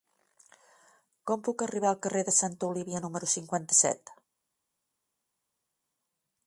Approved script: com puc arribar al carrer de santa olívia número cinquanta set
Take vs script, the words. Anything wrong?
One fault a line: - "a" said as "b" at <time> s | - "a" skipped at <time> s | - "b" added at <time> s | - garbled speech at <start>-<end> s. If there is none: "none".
none